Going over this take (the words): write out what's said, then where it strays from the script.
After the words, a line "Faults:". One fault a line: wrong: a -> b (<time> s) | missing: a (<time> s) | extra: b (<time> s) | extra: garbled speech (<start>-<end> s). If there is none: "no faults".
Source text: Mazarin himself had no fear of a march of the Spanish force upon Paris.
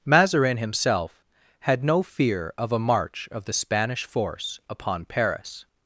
Mazarin himself had no fear of a march of the Spanish force upon Paris.
Faults:
no faults